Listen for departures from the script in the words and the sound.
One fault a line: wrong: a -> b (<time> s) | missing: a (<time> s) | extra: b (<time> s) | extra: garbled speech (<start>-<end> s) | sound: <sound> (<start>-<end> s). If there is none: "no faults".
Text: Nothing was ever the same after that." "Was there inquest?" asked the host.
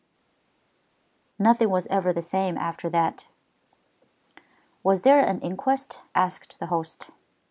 extra: an (5.2 s)